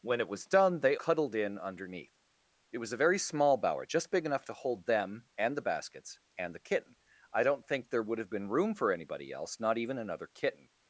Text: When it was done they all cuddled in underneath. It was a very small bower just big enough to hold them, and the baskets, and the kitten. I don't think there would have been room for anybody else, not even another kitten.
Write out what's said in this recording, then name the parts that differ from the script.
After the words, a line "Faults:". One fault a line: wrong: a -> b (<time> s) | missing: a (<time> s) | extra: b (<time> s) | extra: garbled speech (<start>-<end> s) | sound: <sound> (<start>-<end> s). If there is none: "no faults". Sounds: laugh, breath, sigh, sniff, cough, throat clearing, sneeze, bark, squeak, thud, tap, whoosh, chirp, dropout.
When it was done they cuddled in underneath. It was a very small bower just big enough to hold them, and the baskets, and the kitten. I don't think there would have been room for anybody else, not even another kitten.
Faults:
missing: all (1.0 s)